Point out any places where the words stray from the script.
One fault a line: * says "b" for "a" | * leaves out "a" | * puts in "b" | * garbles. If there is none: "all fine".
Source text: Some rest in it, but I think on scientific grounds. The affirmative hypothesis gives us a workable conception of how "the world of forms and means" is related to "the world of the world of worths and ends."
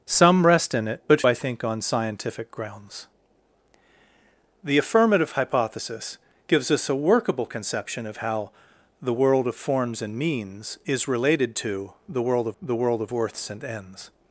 all fine